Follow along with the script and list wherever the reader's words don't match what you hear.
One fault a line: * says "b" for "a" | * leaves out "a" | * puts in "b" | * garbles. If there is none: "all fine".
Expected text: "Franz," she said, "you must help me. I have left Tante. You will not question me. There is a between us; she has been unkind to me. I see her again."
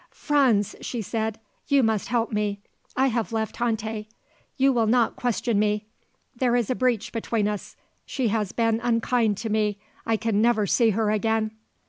* puts in "breach"
* puts in "can never"